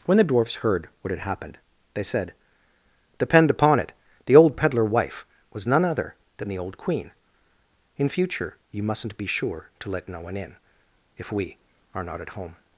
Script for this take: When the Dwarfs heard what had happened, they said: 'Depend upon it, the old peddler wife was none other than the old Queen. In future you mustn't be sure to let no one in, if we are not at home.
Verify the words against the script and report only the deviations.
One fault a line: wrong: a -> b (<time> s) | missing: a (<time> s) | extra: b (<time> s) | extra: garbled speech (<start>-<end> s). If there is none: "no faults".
no faults